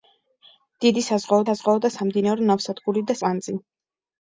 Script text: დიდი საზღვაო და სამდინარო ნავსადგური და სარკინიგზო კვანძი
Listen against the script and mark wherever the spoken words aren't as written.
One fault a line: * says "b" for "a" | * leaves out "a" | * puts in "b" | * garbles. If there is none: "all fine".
* puts in "საზღვაო"
* leaves out "სარკინიგზო"